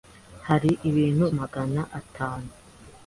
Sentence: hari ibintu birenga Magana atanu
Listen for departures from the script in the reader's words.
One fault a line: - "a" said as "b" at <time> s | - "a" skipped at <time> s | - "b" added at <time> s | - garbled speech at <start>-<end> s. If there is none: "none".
- "birenga" skipped at 1.2 s